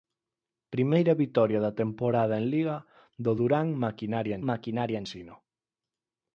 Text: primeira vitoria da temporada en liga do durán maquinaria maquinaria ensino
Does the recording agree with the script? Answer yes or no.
yes